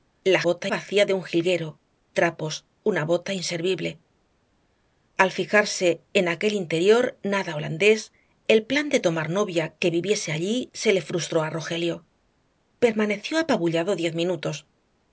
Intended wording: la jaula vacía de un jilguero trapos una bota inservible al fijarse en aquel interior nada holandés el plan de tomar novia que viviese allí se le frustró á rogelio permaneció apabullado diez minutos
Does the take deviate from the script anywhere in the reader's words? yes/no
yes